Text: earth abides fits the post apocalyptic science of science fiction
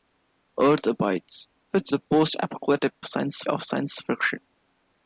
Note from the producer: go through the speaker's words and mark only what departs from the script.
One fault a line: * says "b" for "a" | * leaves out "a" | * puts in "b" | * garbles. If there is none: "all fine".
all fine